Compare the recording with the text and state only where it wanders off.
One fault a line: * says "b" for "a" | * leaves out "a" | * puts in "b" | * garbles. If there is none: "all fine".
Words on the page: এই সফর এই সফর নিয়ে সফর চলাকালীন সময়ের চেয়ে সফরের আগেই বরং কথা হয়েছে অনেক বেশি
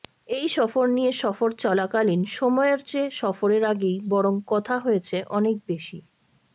* leaves out "এই সফর"